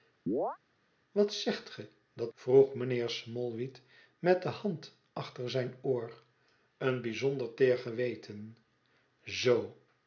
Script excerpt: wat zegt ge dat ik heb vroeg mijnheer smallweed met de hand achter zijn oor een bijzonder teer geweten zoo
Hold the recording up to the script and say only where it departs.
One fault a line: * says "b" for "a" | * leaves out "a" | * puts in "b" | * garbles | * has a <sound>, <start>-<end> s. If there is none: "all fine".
* has a chirp, 0.3-0.6 s
* leaves out "ik heb"